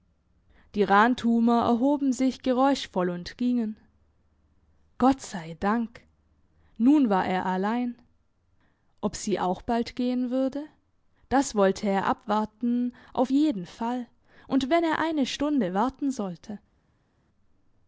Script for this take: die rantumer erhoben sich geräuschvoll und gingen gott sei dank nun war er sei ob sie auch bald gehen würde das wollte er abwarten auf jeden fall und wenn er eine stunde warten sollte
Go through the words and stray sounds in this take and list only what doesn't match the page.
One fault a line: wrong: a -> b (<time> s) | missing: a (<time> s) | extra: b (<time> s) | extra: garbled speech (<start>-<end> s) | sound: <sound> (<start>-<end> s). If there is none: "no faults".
wrong: sei -> allein (7.4 s)